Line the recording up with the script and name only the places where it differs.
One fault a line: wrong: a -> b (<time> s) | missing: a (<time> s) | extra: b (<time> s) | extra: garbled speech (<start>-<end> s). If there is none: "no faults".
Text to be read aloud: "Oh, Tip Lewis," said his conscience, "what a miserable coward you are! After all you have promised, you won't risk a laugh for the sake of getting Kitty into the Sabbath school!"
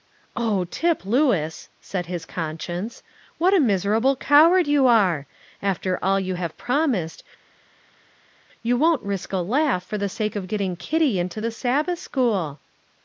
no faults